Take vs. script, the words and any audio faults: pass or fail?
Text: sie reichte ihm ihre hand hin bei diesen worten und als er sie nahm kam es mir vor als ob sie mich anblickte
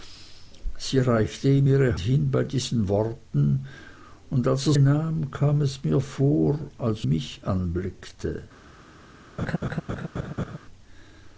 fail